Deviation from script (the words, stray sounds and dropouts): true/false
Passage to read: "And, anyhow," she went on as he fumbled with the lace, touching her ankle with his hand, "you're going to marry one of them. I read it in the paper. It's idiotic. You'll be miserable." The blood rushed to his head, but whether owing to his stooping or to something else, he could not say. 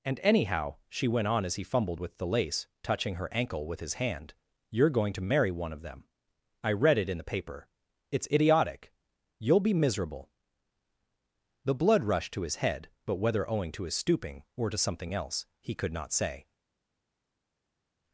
false